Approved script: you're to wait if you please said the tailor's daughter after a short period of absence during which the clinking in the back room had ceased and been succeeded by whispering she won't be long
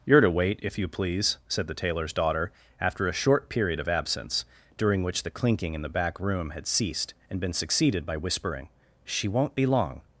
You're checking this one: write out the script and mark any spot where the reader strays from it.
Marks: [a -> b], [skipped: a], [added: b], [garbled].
you're to wait if you please said the tailor's daughter after a short period of absence during which the clinking in the back room had ceased and been succeeded by whispering she won't be long